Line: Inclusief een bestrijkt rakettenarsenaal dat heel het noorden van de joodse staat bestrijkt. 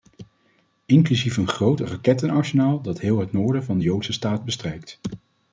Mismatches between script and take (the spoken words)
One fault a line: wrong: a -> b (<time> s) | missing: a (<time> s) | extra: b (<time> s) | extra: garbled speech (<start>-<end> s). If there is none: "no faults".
wrong: bestrijkt -> groot (1.5 s)